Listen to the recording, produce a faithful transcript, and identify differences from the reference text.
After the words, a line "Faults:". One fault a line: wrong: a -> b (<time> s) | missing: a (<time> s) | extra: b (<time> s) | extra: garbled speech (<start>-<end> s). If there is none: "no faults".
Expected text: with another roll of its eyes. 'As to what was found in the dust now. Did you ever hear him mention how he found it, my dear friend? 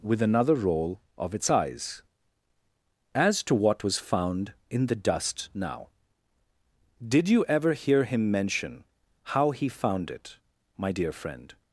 with another roll of its eyes. 'As to what was found in the dust now. Did you ever hear him mention how he found it, my dear friend?
Faults:
no faults